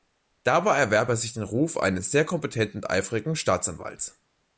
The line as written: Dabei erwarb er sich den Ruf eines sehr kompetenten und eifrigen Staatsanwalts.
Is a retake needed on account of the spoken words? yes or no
no